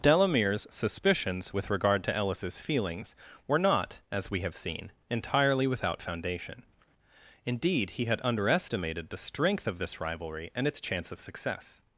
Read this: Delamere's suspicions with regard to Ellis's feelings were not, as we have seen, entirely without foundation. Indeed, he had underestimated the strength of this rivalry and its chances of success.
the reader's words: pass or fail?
fail